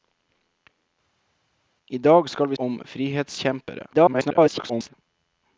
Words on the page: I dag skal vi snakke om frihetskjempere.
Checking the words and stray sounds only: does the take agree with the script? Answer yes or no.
no